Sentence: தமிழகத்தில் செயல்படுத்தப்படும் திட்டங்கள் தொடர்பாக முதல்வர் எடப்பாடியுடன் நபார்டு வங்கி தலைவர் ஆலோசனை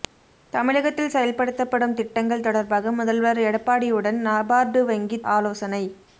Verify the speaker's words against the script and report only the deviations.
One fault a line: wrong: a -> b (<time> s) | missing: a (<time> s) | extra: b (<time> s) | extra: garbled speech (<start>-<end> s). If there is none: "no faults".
missing: தலைவர் (5.2 s)